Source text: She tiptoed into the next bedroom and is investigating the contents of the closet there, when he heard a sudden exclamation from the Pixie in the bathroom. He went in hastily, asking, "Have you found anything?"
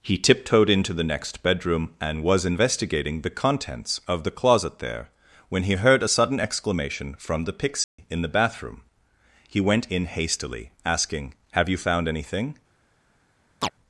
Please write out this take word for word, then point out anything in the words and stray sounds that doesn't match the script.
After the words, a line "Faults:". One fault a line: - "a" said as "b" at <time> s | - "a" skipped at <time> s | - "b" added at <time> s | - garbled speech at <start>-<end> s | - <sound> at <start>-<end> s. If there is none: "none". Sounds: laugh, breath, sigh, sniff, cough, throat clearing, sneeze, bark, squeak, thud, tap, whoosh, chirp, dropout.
He tiptoed into the next bedroom and was investigating the contents of the closet there, when he heard a sudden exclamation from the Pixie in the bathroom. He went in hastily, asking, "Have you found anything?"
Faults:
- "She" said as "He" at 0.0 s
- "is" said as "was" at 2.2 s
- dropout at 7.8-8.0 s
- chirp at 13.6-13.7 s